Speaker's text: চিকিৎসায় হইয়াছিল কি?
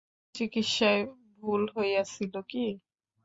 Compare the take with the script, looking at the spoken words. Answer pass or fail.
fail